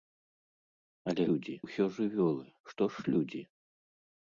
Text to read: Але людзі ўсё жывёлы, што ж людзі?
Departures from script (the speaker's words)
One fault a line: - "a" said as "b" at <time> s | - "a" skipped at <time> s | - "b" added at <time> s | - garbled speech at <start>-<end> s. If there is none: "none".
none